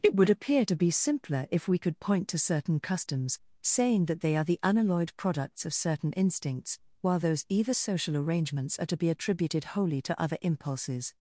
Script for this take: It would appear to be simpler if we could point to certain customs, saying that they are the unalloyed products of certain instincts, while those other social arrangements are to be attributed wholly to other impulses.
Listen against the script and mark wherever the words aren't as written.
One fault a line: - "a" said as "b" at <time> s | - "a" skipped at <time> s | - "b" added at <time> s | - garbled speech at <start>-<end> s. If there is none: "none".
- "other" said as "either" at 7.5 s